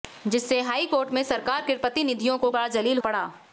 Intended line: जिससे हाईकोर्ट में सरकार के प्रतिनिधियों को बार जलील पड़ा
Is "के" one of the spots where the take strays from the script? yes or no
no